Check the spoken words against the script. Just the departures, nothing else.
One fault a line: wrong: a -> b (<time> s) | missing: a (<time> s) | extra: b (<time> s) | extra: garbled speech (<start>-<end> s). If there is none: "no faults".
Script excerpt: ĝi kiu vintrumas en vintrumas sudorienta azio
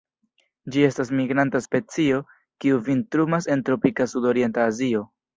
extra: estas migranta specio (0.8 s)
wrong: vintrumas -> tropika (3.7 s)